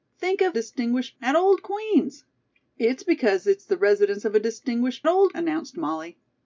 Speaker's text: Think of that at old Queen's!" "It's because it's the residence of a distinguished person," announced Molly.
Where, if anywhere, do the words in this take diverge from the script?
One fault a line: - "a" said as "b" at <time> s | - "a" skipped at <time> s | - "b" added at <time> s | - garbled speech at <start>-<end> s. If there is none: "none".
- "that" said as "distinguished" at 0.5 s
- "person" said as "old" at 5.1 s